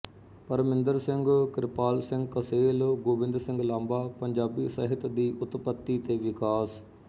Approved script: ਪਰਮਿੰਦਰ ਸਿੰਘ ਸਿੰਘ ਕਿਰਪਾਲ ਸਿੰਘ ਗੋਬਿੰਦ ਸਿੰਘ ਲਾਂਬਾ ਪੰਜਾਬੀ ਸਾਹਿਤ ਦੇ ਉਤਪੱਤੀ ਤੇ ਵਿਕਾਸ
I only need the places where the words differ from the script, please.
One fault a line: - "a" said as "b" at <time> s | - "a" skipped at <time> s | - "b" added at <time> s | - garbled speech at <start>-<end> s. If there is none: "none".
- "ਸਿੰਘ" skipped at 1.2 s
- "ਕਸੇਲ" added at 2.3 s
- "ਦੇ" said as "ਦੀ" at 5.1 s